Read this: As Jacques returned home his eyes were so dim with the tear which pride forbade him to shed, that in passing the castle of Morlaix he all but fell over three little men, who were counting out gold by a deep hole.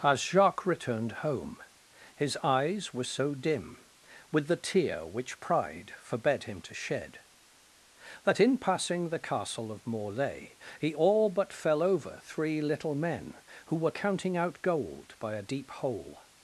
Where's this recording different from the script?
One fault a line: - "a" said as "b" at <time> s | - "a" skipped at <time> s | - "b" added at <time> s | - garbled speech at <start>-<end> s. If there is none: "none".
none